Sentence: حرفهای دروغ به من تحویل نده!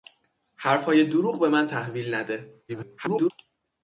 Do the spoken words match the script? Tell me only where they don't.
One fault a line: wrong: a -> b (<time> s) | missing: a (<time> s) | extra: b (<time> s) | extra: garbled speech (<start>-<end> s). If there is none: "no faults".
extra: garbled speech (2.7-3.3 s)